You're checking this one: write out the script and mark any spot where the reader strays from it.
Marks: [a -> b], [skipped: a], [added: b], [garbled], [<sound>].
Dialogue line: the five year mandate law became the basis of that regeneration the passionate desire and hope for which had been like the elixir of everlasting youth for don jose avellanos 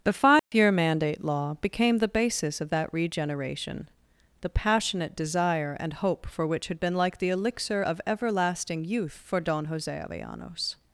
the five [dropout] year mandate law became the basis of that regeneration the passionate desire and hope for which had been like the elixir of everlasting youth for don jose avellanos